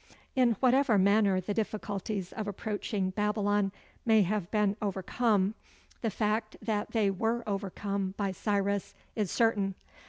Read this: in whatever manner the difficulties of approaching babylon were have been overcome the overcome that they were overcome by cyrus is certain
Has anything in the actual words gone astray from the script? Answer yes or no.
yes